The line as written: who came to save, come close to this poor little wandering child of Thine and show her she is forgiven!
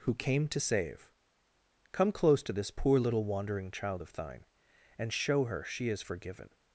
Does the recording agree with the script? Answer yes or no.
yes